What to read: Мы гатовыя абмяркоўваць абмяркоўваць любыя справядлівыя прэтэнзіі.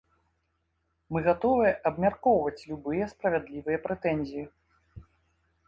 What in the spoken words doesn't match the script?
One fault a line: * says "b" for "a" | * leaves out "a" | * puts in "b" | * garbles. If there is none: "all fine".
* leaves out "абмяркоўваць"